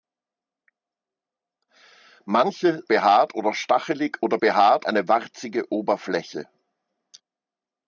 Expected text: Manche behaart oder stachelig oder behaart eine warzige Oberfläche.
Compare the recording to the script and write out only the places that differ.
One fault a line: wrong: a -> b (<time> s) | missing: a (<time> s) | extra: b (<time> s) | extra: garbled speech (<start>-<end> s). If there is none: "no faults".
no faults